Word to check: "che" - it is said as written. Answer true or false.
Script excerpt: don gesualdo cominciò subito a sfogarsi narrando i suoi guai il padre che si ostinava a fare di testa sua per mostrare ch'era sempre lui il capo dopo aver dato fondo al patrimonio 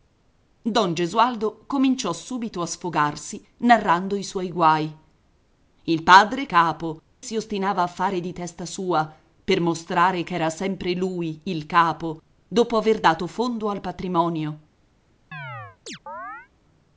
false